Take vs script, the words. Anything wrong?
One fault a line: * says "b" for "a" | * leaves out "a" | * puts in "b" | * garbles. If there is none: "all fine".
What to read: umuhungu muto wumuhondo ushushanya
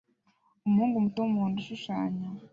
all fine